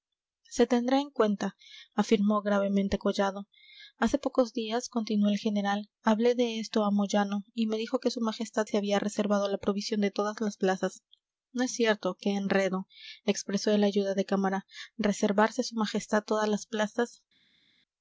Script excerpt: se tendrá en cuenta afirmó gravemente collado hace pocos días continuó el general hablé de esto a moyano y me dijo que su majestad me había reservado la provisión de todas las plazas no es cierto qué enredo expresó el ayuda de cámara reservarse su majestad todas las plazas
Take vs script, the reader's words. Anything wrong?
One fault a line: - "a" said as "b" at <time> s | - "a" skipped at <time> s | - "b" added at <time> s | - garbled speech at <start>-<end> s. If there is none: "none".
- "me" said as "se" at 8.6 s